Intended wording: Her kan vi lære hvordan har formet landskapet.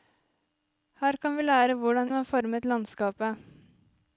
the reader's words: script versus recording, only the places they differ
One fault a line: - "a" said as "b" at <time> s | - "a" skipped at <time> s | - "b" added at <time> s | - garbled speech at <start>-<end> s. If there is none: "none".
none